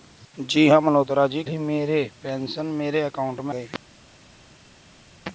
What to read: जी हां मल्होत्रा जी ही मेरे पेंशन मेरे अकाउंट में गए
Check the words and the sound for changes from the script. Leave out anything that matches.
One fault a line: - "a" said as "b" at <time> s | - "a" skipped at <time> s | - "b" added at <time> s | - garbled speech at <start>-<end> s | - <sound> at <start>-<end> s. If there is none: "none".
none